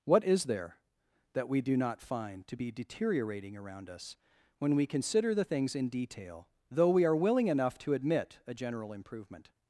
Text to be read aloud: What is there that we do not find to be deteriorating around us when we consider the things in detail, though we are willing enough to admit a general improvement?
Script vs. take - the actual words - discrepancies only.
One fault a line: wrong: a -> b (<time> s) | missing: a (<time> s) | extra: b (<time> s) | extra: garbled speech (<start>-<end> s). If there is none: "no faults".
no faults